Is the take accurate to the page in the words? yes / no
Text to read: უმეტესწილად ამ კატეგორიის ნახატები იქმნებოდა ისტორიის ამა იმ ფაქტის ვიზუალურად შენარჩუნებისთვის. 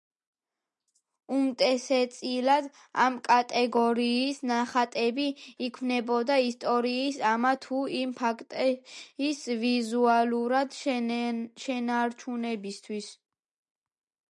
no